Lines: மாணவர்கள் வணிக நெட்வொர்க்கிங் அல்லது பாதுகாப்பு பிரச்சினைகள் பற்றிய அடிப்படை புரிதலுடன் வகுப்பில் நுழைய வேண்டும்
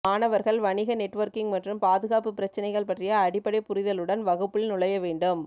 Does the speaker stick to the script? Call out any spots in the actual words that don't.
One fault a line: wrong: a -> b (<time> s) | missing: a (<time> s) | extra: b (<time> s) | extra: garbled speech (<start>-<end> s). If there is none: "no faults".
wrong: அல்லது -> மற்றும் (1.5 s)